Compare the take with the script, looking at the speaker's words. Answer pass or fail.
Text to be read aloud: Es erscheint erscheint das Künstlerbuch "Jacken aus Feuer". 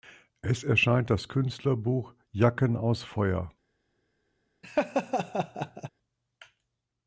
fail